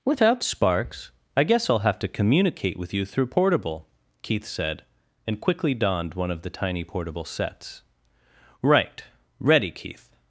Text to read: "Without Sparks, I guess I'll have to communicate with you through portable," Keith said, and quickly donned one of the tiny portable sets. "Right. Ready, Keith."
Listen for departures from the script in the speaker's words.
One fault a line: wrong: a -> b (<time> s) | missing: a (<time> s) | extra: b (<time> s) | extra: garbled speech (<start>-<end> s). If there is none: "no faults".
no faults